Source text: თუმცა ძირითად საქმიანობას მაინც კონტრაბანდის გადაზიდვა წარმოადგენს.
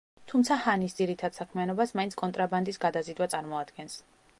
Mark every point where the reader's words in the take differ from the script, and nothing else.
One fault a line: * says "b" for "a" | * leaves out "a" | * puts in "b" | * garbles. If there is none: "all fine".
* puts in "ჰანის"